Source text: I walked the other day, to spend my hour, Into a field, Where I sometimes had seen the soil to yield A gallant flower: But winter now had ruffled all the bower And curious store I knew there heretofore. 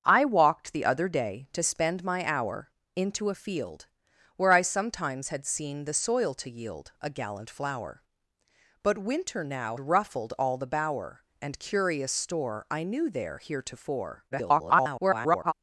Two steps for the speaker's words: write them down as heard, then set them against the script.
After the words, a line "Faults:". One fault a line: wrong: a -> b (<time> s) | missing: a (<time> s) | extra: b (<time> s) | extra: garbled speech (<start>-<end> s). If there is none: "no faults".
I walked the other day, to spend my hour, Into a field, Where I sometimes had seen the soil to yield A gallant flower: But winter now ruffled all the bower And curious store I knew there heretofore. [garbled]
Faults:
missing: had (9.8 s)
extra: garbled speech (14.3-15.5 s)